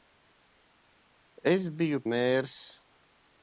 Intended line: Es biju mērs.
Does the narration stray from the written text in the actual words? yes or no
no